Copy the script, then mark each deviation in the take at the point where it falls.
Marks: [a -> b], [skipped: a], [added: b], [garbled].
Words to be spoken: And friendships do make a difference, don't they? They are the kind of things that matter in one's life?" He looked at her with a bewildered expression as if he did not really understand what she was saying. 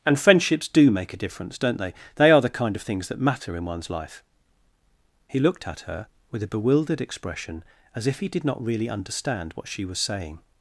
And friendships do make a difference, don't they? They are the kind of things that matter in one's life?" He looked at her with a bewildered expression as if he did not really understand what she was saying.